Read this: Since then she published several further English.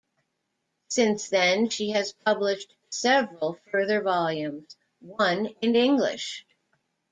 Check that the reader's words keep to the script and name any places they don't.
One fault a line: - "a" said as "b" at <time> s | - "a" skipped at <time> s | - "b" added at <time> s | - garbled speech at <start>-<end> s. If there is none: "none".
- "has" added at 1.9 s
- "volumes one in" added at 4.0 s